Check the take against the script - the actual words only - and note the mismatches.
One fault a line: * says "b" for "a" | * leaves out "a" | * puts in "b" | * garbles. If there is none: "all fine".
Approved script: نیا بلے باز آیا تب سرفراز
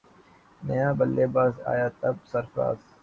all fine